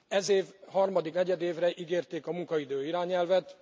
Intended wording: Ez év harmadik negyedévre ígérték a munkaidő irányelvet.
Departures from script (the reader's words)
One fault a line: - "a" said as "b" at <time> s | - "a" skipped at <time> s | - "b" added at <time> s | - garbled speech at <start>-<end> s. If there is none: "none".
none